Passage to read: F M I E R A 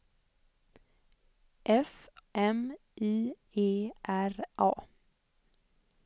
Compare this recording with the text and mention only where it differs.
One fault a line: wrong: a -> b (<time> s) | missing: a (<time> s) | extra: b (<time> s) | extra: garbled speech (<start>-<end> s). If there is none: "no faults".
no faults